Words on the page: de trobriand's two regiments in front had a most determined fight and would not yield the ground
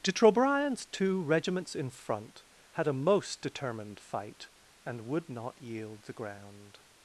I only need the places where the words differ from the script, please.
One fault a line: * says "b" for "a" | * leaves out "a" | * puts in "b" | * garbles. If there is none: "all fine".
all fine